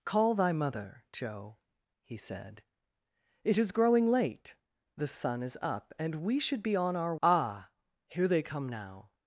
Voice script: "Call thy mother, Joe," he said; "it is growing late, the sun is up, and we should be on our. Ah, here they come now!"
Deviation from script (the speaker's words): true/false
false